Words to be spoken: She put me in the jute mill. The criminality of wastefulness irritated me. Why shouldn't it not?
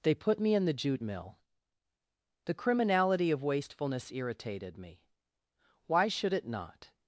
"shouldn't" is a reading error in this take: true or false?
true